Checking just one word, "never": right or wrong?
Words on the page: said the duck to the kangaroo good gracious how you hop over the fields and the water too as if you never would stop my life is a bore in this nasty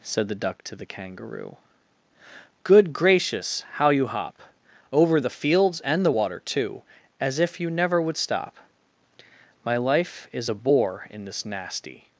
right